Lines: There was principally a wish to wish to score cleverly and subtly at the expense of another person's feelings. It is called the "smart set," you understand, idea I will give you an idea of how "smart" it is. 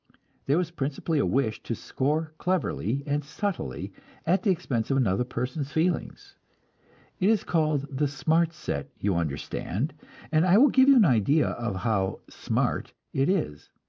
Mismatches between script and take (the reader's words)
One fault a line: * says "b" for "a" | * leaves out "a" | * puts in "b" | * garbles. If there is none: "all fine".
* leaves out "wish to"
* says "and" for "idea"